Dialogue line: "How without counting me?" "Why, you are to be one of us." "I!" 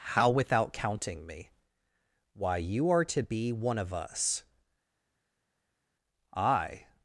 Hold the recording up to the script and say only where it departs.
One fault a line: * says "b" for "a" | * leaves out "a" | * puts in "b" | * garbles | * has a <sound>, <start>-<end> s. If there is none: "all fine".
all fine